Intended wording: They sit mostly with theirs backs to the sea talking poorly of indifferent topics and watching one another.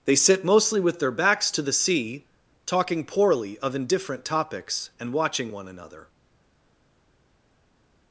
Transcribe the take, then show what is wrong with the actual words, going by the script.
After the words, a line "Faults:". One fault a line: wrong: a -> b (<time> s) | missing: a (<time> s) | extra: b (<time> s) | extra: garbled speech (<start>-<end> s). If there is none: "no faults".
They sit mostly with their backs to the sea talking poorly of indifferent topics and watching one another.
Faults:
wrong: theirs -> their (1.0 s)